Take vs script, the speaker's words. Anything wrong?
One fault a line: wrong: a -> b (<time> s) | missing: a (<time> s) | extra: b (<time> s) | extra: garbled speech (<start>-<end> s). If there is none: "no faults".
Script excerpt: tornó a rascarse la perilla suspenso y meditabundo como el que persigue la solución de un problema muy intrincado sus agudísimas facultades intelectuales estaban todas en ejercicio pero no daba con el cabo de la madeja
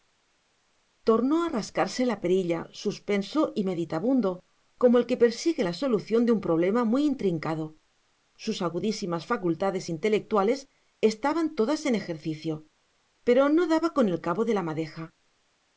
no faults